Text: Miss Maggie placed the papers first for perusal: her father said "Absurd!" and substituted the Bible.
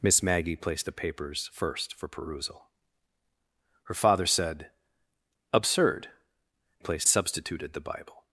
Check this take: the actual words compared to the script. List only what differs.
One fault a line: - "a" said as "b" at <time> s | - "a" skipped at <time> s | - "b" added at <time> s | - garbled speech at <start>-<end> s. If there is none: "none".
- "and" said as "placed" at 6.8 s